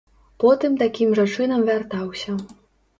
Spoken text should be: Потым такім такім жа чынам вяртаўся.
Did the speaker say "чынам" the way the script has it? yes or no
yes